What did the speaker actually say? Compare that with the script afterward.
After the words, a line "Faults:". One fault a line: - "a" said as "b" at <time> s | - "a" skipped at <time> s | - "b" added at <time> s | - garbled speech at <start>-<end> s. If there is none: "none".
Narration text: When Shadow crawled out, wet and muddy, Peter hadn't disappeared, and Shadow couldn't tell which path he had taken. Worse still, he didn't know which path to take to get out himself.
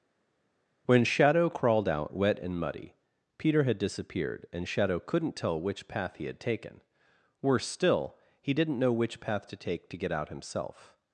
When Shadow crawled out, wet and muddy, Peter had disappeared, and Shadow couldn't tell which path he had taken. Worse still, he didn't know which path to take to get out himself.
Faults:
- "hadn't" said as "had" at 3.6 s